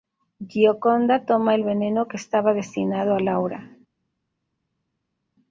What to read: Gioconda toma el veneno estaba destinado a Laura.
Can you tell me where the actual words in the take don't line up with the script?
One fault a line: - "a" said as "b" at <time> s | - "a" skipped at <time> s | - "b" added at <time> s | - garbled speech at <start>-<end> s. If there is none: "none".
- "que" added at 2.1 s